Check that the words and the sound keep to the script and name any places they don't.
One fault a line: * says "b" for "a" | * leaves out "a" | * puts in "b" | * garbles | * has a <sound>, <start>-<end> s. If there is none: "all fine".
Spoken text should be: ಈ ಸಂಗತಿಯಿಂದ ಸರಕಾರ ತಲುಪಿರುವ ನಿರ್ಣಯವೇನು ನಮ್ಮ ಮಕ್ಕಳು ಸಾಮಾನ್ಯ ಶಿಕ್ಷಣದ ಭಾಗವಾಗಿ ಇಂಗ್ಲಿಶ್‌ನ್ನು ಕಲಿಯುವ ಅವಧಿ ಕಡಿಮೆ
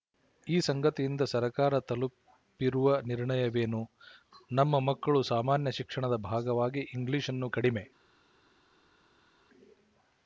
* leaves out "ಕಲಿಯುವ ಅವಧಿ"